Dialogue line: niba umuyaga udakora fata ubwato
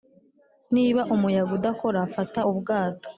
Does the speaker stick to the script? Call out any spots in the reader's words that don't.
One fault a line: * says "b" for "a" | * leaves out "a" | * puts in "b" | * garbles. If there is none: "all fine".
all fine